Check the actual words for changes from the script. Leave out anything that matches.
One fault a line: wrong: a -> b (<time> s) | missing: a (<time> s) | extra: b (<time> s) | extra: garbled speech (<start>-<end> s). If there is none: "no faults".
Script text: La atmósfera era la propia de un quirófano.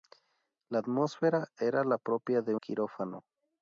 missing: un (2.5 s)